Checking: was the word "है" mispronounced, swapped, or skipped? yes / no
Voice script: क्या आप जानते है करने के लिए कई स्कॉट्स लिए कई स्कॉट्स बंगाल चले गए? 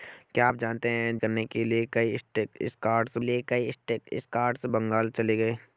no